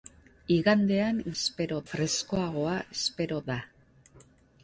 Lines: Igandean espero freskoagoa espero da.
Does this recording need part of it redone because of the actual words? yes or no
no